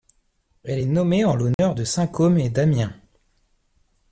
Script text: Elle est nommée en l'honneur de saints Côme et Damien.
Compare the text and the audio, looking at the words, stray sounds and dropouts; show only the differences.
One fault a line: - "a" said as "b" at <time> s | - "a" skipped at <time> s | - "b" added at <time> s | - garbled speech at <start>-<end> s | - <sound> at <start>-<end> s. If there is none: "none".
- dropout at 1.5-1.6 s